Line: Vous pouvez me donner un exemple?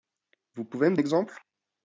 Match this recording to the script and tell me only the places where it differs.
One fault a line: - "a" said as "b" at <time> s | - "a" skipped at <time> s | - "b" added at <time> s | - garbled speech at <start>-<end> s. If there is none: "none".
- "donner un" skipped at 0.9 s